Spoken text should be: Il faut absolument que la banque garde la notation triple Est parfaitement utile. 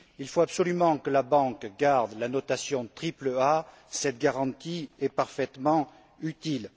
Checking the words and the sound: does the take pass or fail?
fail